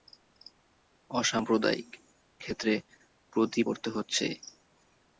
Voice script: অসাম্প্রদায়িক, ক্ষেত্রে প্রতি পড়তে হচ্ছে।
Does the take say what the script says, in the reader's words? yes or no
yes